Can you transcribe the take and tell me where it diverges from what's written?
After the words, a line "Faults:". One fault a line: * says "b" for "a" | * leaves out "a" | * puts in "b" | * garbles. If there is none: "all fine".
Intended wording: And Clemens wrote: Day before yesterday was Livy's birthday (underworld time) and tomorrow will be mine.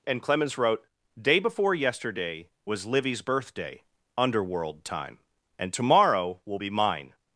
And Clemens wrote: Day before yesterday was Livy's birthday (underworld time) and tomorrow will be mine.
Faults:
all fine